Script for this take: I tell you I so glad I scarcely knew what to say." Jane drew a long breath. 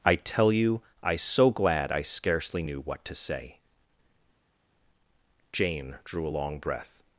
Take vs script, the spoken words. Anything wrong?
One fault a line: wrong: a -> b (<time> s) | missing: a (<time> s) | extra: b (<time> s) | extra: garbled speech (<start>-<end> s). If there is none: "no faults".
no faults